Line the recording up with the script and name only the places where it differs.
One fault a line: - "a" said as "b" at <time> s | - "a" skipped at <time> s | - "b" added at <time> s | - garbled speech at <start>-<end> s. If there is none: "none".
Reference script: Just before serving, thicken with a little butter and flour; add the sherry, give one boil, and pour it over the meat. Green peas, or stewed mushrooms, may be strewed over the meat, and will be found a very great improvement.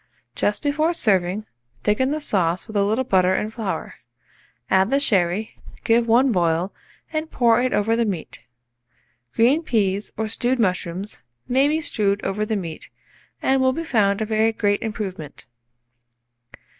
- "the sauce" added at 2.1 s